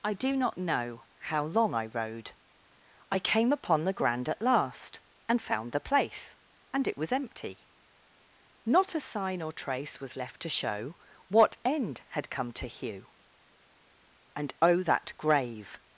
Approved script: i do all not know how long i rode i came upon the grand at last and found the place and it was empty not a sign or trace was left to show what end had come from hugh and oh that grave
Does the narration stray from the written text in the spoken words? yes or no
yes